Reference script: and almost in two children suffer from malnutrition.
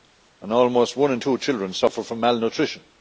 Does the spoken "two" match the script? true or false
true